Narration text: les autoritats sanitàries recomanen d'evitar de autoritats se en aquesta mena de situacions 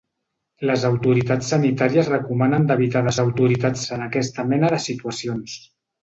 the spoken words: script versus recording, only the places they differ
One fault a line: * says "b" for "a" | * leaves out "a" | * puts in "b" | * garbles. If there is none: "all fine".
all fine